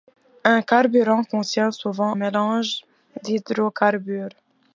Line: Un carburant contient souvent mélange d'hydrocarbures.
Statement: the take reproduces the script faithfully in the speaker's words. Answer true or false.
true